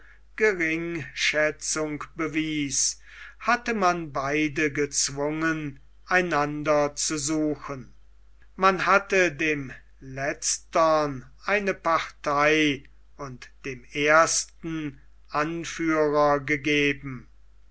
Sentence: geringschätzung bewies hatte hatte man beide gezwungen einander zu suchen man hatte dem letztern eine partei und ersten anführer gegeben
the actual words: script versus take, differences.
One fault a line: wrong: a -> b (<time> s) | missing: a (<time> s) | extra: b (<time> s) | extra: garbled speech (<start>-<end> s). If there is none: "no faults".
missing: hatte (3.8 s)
extra: dem (13.6 s)